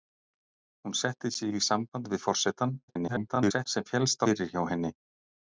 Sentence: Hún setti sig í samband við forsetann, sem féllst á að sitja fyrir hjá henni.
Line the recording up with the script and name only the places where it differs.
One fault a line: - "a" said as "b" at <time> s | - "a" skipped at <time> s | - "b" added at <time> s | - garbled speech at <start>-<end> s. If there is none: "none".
- garbled speech at 2.9-3.7 s
- "að sitja" skipped at 4.3 s